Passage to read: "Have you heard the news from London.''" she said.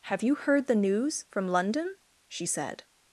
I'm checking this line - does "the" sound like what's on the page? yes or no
yes